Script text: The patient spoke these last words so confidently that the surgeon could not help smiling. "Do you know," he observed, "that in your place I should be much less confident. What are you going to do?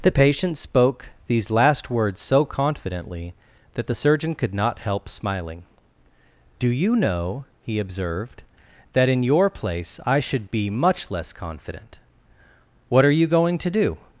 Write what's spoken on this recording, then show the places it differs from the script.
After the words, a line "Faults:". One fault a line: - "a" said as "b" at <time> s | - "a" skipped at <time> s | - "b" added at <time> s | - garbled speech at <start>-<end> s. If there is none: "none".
The patient spoke these last words so confidently that the surgeon could not help smiling. "Do you know," he observed, "that in your place I should be much less confident. What are you going to do?
Faults:
none